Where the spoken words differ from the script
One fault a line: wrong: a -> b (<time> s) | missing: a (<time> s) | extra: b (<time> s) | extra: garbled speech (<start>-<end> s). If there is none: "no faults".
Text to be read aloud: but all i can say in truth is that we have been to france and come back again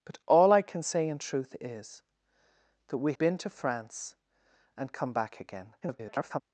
missing: have (3.1 s)
extra: garbled speech (5.8-6.4 s)